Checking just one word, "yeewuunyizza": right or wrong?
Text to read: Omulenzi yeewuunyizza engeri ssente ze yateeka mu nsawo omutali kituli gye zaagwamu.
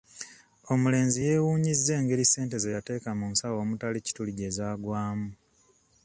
right